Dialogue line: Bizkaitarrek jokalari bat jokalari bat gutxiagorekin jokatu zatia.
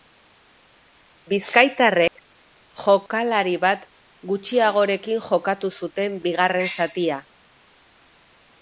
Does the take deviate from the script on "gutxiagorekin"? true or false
true